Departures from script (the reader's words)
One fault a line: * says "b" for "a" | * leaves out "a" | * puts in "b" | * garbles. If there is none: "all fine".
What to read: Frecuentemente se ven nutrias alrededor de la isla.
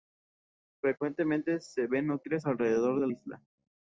* leaves out "la"